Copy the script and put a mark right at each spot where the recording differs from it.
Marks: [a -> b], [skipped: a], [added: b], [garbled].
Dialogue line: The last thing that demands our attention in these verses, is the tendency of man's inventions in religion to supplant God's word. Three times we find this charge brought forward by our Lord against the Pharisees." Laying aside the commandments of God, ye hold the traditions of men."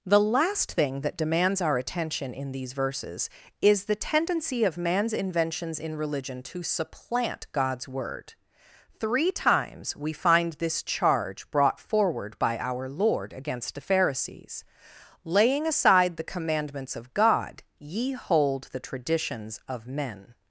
The last thing that demands our attention in these verses, is the tendency of man's inventions in religion to supplant God's word. Three times we find this charge brought forward by our Lord against the Pharisees." Laying aside the commandments of God, ye hold the traditions of men."